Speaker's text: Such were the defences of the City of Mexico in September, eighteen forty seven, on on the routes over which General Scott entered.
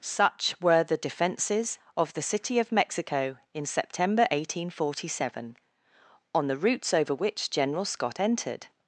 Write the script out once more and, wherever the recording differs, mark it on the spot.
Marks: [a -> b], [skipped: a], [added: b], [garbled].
Such were the defences of the City of Mexico in September, eighteen forty seven, on [skipped: on] the routes over which General Scott entered.